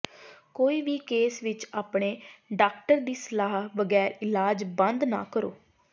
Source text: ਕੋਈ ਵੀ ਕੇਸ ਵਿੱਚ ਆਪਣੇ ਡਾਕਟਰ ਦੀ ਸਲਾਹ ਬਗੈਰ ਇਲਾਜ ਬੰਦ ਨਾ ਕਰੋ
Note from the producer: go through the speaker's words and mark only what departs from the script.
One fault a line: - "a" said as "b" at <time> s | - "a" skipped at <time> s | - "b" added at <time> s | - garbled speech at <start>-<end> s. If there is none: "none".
none